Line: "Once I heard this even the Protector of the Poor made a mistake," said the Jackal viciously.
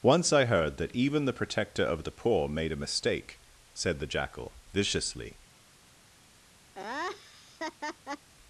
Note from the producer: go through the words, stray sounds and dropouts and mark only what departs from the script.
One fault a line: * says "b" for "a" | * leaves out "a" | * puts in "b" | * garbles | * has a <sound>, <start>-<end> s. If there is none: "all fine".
* says "that" for "this"
* has a laugh, 6.7-8.3 s